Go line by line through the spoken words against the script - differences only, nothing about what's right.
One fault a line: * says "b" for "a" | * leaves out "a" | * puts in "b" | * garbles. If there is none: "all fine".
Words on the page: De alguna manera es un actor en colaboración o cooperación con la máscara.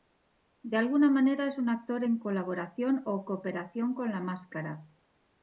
all fine